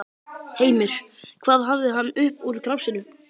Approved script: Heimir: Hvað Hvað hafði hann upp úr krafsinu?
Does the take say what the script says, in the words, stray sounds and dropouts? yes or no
no